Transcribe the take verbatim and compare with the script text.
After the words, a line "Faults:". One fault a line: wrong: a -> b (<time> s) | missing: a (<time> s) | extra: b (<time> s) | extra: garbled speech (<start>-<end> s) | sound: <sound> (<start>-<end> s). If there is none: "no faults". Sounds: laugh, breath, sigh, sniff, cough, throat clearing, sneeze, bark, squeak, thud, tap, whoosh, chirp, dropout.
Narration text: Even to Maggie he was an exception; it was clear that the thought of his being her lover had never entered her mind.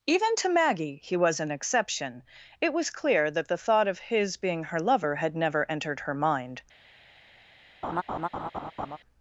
Even to Maggie he was an exception; it was clear that the thought of his being her lover had never entered her mind.
Faults:
sound: laugh (7.8-9.0 s)